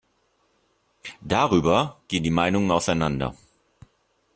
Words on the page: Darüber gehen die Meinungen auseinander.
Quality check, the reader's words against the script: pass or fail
pass